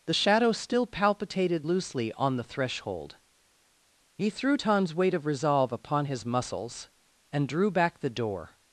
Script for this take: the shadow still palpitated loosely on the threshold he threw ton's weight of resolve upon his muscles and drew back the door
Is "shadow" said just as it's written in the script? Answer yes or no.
yes